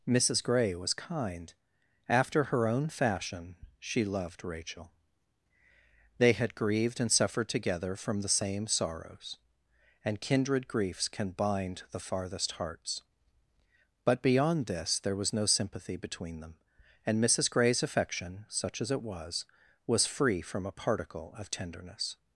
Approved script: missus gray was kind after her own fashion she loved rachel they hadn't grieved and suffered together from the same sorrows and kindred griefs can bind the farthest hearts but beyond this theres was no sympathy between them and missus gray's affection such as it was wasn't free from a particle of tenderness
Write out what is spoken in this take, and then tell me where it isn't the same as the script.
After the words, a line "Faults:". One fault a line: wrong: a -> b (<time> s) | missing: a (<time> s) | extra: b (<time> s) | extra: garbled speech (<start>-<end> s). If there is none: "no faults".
missus gray was kind after her own fashion she loved rachel they had grieved and suffered together from the same sorrows and kindred griefs can bind the farthest hearts but beyond this there was no sympathy between them and missus gray's affection such as it was was free from a particle of tenderness
Faults:
wrong: hadn't -> had (6.3 s)
wrong: theres -> there (15.0 s)
wrong: wasn't -> was (19.9 s)